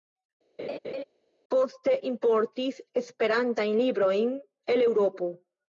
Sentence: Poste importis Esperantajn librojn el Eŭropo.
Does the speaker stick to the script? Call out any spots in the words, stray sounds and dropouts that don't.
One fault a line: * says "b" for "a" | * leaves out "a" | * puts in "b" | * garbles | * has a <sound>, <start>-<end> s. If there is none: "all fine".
* has a laugh, 0.6-1.0 s